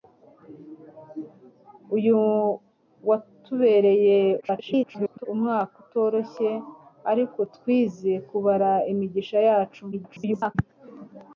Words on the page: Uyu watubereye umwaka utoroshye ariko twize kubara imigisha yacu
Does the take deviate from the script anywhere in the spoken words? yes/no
yes